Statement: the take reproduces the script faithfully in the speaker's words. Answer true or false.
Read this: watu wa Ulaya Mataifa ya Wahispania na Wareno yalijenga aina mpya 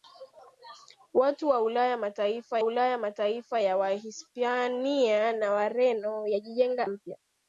false